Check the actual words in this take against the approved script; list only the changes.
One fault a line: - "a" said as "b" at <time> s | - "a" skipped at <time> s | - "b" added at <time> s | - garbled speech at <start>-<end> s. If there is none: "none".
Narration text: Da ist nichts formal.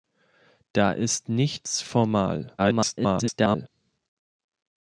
- garbled speech at 2.6-3.7 s